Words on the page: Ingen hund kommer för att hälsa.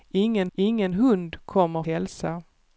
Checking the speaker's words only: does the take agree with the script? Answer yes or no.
no